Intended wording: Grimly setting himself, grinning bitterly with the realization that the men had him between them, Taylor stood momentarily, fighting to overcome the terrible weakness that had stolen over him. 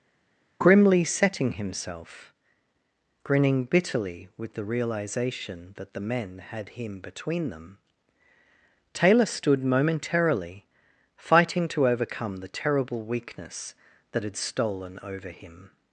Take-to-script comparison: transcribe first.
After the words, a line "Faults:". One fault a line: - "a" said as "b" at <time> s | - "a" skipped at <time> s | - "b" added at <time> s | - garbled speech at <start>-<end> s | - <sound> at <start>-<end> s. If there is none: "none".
Grimly setting himself, grinning bitterly with the realization that the men had him between them, Taylor stood momentarily, fighting to overcome the terrible weakness that had stolen over him.
Faults:
none